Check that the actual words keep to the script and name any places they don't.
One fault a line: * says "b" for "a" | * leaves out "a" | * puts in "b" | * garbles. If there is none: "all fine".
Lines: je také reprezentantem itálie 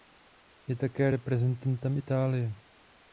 all fine